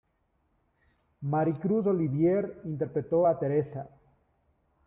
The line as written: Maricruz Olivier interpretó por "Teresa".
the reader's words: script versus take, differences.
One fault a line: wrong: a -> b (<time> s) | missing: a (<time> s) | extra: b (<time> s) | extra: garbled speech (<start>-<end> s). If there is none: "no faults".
wrong: por -> a (3.2 s)